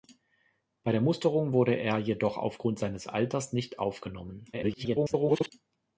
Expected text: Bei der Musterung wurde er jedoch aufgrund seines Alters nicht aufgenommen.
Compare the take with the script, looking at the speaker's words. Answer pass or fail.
fail